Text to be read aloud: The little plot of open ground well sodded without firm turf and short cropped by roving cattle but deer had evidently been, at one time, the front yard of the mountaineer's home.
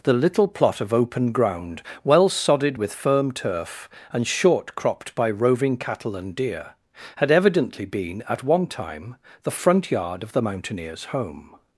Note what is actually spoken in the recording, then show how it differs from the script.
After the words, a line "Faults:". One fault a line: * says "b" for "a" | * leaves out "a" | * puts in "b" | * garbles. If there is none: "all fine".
The little plot of open ground well sodded with firm turf and short cropped by roving cattle and deer had evidently been, at one time, the front yard of the mountaineer's home.
Faults:
* says "with" for "without"
* says "and" for "but"